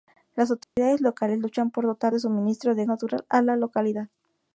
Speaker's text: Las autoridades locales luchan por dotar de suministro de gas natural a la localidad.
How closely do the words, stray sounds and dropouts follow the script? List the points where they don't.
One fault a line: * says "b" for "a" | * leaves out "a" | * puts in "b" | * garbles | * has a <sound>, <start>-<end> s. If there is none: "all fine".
* has a dropout, 0.6-0.8 s
* leaves out "gas"